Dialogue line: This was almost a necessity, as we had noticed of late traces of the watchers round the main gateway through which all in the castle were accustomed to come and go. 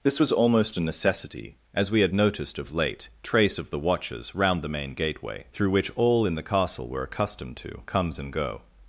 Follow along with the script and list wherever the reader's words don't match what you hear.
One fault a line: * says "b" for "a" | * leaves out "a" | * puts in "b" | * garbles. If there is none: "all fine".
* says "trace" for "traces"
* says "comes" for "come"